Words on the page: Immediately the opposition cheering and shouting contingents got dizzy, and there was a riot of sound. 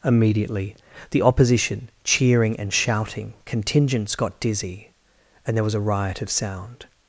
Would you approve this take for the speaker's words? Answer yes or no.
yes